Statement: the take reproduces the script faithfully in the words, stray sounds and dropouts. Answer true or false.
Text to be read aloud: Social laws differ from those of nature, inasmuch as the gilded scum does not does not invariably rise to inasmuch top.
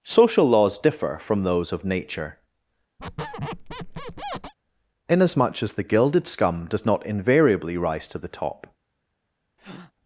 false